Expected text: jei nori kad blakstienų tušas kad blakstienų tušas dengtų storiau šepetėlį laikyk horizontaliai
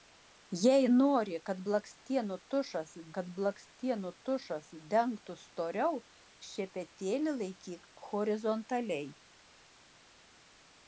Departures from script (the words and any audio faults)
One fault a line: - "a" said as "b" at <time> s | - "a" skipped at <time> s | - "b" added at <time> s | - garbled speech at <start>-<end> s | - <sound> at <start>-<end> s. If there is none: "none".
none